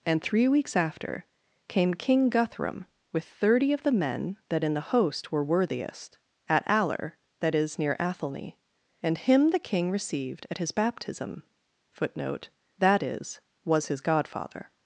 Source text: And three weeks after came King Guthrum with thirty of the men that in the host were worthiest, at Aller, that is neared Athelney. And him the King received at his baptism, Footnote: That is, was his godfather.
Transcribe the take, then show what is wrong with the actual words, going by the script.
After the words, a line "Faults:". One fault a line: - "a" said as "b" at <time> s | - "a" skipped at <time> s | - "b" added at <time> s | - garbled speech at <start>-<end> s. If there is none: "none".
And three weeks after came King Guthrum with thirty of the men that in the host were worthiest, at Aller, that is near Athelney. And him the King received at his baptism, Footnote: That is, was his godfather.
Faults:
- "neared" said as "near" at 7.8 s